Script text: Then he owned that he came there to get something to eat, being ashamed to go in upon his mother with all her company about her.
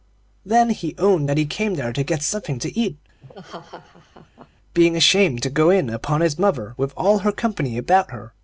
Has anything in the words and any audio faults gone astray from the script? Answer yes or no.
yes